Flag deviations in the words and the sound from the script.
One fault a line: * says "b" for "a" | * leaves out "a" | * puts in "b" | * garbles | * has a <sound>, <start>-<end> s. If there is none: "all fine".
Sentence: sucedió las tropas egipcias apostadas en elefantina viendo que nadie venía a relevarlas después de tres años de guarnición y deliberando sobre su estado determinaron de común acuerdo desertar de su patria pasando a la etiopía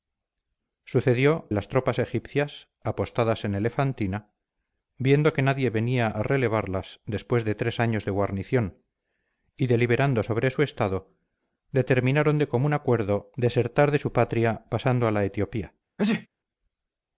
* has a sneeze, 16.0-16.3 s